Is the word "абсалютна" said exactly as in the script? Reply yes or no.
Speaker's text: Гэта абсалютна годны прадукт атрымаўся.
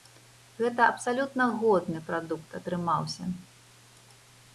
yes